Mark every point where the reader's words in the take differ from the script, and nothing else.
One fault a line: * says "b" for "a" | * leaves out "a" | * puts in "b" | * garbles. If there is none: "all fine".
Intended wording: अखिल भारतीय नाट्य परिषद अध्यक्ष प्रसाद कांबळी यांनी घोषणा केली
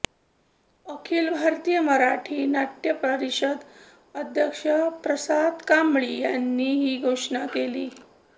* puts in "मराठी"
* puts in "ही"